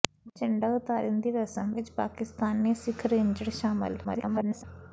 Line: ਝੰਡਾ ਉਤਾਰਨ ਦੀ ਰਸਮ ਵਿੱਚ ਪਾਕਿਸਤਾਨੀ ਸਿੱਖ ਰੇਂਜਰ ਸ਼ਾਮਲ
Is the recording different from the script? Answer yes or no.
yes